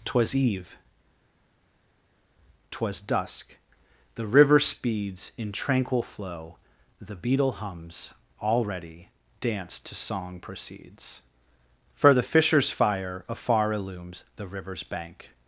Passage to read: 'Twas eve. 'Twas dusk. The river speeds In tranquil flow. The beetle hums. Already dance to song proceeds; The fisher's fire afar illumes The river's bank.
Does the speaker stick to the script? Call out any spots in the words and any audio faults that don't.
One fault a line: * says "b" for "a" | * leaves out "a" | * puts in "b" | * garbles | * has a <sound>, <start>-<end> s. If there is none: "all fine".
* puts in "for"